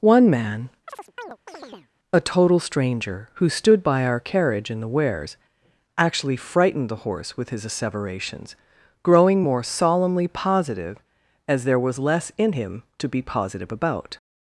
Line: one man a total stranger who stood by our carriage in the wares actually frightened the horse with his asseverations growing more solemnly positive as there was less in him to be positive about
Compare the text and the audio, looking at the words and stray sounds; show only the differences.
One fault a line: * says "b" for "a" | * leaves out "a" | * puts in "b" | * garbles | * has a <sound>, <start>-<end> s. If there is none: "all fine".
* has a chirp, 0.9-1.9 s